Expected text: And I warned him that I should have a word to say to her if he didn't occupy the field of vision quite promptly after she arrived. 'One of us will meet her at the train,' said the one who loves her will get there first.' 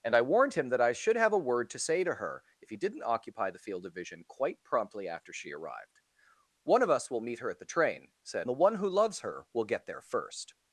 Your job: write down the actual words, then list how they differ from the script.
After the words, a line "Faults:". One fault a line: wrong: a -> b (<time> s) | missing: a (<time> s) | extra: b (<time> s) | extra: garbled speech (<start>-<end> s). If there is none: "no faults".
And I warned him that I should have a word to say to her if he didn't occupy the field of vision quite promptly after she arrived. 'One of us will meet her at the train,' said the one who loves her will get there first.'
Faults:
no faults